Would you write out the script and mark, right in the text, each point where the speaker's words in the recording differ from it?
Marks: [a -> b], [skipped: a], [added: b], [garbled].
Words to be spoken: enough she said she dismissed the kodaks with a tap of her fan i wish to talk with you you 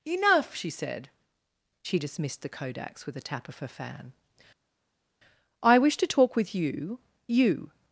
enough she said she dismissed the kodaks with a tap of her fan i wish to talk with you you